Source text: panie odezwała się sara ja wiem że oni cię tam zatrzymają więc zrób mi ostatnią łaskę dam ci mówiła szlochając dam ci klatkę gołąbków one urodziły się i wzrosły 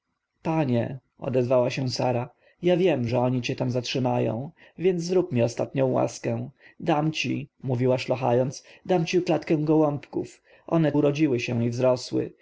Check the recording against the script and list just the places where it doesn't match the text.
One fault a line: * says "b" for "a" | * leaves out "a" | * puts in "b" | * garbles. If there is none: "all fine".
all fine